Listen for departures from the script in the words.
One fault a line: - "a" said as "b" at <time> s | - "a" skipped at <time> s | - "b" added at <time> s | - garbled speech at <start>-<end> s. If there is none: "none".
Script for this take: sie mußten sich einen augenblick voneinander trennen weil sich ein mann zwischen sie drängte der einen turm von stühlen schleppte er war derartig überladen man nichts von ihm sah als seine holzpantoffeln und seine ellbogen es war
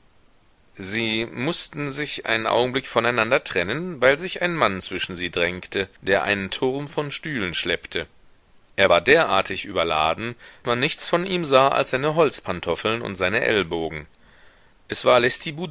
none